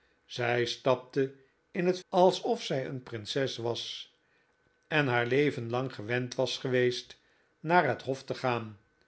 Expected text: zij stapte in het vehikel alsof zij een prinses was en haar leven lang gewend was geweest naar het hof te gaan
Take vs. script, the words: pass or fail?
fail